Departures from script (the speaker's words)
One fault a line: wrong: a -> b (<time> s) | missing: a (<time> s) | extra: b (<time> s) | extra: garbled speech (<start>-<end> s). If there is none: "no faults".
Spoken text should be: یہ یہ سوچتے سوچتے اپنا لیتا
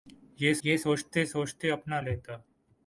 no faults